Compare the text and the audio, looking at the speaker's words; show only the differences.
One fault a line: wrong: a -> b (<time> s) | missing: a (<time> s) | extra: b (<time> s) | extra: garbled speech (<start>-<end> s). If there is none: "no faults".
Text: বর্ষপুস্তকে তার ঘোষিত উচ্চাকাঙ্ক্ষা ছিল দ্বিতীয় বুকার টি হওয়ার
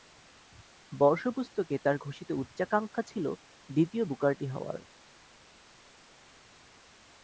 no faults